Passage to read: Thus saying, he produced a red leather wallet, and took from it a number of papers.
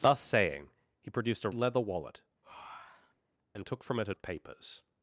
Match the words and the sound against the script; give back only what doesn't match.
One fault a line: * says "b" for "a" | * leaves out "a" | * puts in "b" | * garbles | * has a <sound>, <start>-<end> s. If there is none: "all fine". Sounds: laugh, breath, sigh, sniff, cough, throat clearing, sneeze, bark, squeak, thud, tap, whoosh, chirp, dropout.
* leaves out "red"
* has a breath, 2.4-3.2 s
* leaves out "number"